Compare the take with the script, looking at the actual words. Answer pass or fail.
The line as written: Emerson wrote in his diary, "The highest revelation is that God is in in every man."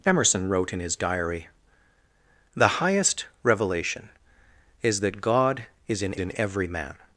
pass